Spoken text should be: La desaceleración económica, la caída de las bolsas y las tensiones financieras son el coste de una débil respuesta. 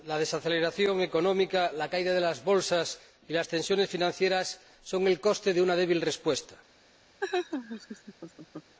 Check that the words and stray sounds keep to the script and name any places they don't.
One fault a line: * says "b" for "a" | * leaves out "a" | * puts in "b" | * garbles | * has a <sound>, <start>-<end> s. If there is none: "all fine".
* has a laugh, 7.2-8.8 s